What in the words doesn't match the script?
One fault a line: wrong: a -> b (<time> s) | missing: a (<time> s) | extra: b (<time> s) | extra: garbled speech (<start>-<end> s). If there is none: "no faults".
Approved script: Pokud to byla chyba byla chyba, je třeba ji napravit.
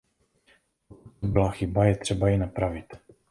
missing: byla chyba (1.8 s)